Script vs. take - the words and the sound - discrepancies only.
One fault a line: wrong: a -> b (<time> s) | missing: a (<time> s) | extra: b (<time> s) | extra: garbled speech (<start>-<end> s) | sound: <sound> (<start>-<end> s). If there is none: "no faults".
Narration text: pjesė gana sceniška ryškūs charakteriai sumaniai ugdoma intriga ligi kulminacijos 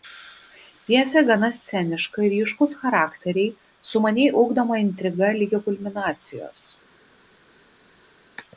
no faults